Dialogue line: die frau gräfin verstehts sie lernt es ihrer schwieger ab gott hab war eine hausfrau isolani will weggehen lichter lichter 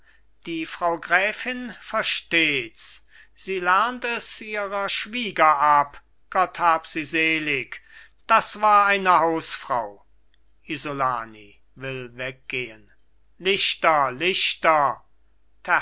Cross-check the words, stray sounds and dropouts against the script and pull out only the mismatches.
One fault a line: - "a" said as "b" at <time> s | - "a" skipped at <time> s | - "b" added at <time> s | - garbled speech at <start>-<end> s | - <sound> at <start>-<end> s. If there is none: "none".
- "sie selig das" added at 6.8 s